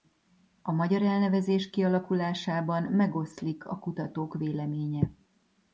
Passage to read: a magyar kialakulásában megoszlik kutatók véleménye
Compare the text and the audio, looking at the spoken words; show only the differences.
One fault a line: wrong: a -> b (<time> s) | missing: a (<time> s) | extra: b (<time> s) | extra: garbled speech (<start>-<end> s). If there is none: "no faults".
extra: elnevezés (1.0 s)
extra: a (3.7 s)